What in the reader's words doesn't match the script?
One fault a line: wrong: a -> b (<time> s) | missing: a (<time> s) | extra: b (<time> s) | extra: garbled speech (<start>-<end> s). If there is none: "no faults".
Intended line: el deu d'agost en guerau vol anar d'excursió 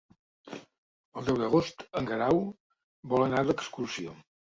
no faults